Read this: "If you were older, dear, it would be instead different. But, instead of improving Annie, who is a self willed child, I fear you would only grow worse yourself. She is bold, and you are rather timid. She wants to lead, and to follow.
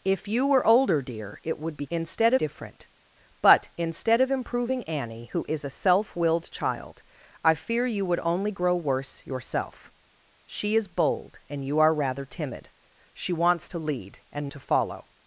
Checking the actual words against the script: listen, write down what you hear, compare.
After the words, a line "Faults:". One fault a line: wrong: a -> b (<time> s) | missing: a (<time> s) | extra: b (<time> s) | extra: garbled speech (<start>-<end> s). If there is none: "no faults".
"If you were older, dear, it would be instead different. But, instead of improving Annie, who is a self willed child, I fear you would only grow worse yourself. She is bold, and you are rather timid. She wants to lead, and to follow.
Faults:
no faults